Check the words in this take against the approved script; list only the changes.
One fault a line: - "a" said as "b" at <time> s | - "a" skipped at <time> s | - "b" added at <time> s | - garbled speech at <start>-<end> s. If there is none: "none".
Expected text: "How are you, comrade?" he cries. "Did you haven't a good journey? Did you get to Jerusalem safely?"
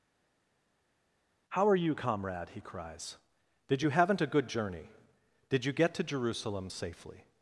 none